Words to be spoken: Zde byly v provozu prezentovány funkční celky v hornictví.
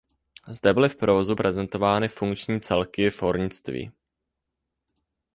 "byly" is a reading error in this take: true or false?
false